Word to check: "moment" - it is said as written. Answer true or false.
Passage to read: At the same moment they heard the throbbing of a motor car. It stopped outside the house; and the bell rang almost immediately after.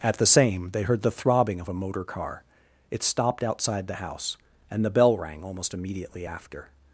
false